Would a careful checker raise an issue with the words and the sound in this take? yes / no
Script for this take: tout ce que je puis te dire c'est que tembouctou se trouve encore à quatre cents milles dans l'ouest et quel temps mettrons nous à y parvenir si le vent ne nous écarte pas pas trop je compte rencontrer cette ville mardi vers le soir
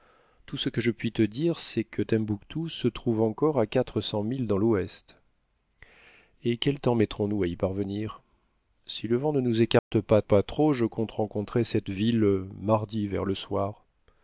yes